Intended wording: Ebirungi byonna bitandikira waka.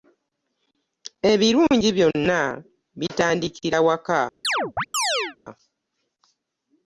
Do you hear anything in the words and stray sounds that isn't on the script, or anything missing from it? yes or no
yes